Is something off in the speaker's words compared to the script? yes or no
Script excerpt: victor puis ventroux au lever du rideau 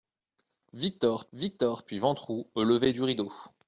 yes